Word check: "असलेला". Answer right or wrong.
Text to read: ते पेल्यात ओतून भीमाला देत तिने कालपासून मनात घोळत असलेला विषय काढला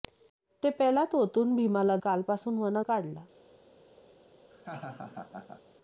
wrong